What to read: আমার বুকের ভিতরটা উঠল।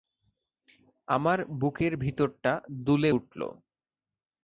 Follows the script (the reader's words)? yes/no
no